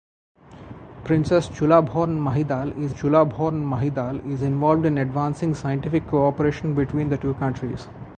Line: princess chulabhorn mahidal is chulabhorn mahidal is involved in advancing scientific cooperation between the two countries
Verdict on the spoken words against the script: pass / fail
pass